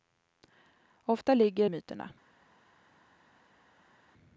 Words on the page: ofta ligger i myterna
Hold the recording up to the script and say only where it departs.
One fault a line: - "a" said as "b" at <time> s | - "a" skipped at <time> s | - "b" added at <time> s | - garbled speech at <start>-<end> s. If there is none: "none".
none